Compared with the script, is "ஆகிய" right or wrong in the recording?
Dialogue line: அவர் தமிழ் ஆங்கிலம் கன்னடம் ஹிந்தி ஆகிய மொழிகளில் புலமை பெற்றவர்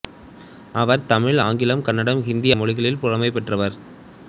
wrong